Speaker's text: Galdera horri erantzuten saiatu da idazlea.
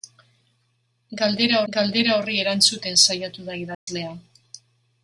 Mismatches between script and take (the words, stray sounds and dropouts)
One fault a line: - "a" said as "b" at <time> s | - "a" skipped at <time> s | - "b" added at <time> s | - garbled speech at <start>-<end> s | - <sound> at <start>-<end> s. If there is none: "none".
- "galdera" added at 1.7 s
- dropout at 3.7-3.9 s